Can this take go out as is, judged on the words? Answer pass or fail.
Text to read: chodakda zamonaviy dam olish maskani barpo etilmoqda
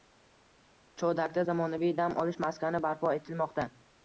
pass